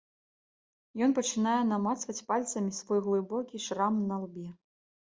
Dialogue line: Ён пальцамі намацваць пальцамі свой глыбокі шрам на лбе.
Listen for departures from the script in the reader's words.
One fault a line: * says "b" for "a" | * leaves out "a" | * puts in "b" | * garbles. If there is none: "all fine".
* says "пачынае" for "пальцамі"